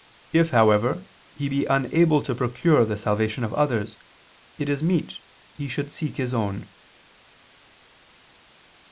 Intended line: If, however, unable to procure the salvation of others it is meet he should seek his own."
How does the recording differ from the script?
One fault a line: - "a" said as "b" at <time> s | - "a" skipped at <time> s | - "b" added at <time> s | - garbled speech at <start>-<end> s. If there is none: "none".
- "he be" added at 1.3 s